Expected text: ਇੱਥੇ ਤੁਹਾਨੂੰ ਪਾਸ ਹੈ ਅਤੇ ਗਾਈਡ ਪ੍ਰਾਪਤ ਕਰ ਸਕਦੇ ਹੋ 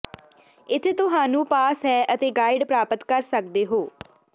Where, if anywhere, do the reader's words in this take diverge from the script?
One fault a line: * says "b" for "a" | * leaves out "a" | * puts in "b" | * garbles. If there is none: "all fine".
all fine